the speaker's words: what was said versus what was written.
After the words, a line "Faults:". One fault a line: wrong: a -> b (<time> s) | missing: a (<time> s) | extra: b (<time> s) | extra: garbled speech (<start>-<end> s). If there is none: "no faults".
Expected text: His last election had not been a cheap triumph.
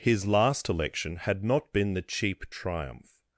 His last election had not been the cheap triumph.
Faults:
wrong: a -> the (1.9 s)